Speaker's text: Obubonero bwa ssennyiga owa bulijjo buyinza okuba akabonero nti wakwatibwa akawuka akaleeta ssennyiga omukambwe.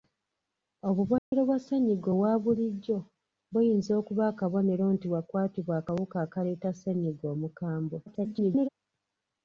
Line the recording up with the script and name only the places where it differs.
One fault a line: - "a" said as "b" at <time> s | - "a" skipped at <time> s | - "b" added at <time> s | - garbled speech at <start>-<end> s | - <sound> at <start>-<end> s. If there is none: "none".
- dropout at 1.2-1.3 s
- garbled speech at 8.1-8.7 s